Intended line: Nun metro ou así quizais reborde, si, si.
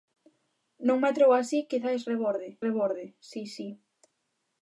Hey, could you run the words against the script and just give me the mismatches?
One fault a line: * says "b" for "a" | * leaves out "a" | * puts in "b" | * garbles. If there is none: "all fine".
* puts in "reborde"